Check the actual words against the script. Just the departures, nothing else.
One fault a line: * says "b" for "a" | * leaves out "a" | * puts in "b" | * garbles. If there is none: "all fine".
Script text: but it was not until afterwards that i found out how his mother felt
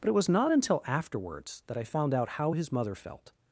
all fine